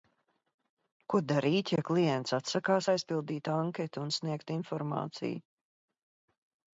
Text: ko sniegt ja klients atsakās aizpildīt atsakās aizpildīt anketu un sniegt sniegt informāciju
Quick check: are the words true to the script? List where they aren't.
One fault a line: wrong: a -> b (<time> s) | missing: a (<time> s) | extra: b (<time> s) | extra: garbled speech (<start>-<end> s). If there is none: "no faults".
wrong: sniegt -> darīt (1.3 s)
missing: atsakās aizpildīt (3.5 s)
missing: sniegt (4.5 s)